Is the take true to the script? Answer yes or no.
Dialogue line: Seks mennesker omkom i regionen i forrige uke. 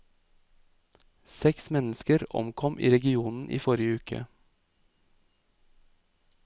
yes